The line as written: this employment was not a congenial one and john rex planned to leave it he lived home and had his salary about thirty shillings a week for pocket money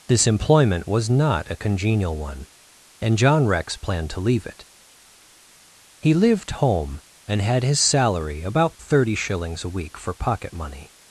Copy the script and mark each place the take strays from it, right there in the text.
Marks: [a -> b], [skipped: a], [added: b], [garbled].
this employment was not a congenial one and john rex planned to leave it he lived home and had his salary about thirty shillings a week for pocket money